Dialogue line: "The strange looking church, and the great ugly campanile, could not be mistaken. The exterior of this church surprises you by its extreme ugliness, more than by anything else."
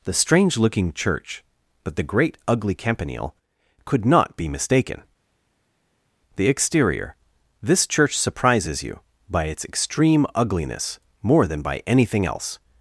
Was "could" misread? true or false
false